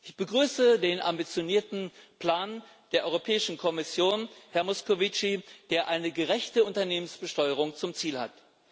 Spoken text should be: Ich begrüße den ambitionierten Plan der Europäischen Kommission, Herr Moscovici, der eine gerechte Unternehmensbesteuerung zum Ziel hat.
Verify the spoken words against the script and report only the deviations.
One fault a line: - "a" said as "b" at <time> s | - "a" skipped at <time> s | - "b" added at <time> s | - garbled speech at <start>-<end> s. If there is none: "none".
none